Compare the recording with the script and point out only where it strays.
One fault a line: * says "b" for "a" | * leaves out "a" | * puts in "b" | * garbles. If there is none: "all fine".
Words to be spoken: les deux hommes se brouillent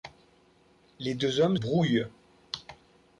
* leaves out "se"